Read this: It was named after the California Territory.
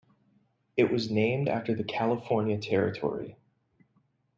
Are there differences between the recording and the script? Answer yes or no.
no